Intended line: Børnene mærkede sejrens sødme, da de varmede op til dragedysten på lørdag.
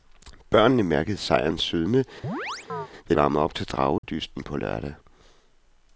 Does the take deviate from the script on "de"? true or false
true